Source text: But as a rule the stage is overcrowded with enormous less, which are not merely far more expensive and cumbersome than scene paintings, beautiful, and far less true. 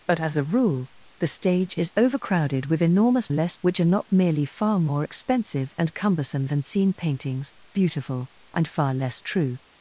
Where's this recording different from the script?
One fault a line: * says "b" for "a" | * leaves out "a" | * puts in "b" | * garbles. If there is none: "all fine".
all fine